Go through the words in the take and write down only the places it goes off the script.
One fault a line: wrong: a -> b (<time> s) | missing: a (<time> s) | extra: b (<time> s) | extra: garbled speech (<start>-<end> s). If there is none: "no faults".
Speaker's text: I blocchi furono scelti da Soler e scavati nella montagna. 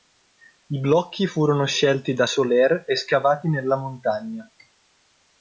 no faults